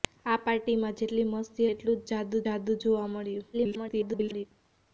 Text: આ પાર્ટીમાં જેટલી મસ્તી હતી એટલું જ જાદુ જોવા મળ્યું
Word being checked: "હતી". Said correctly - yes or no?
no